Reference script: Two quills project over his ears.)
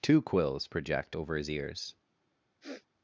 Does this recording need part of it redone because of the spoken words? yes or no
no